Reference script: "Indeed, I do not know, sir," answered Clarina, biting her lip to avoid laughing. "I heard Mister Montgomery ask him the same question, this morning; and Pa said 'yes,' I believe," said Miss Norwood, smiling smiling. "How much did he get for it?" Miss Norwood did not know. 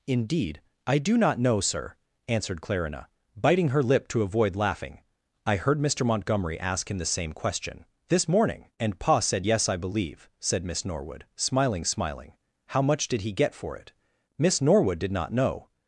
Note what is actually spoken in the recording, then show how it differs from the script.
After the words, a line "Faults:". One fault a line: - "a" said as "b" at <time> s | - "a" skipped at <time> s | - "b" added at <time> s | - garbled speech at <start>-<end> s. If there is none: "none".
"Indeed, I do not know, sir," answered Clarina, biting her lip to avoid laughing. "I heard Mister Montgomery ask him the same question, this morning; and Pa said 'yes,' I believe," said Miss Norwood, smiling smiling. "How much did he get for it?" Miss Norwood did not know.
Faults:
none